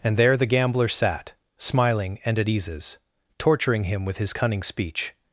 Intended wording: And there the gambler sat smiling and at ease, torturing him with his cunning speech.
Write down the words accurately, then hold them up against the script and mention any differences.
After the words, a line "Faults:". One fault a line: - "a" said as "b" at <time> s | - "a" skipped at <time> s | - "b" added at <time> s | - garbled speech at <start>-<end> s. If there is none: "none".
And there the gambler sat smiling and at eases, torturing him with his cunning speech.
Faults:
- "ease" said as "eases" at 2.5 s